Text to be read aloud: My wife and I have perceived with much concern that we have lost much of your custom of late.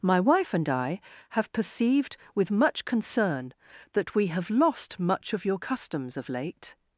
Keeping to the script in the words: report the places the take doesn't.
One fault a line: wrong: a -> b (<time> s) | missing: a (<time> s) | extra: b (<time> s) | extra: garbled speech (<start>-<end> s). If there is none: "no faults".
wrong: custom -> customs (5.6 s)